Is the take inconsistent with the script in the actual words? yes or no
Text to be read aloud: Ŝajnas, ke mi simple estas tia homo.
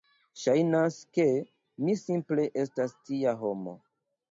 no